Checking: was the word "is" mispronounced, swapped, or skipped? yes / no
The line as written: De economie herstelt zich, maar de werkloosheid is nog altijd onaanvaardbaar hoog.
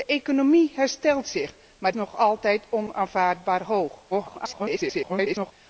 yes